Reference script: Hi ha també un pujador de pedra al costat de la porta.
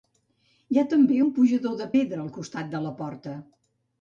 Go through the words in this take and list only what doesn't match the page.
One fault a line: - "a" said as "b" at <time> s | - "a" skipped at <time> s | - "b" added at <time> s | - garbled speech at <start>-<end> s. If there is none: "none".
none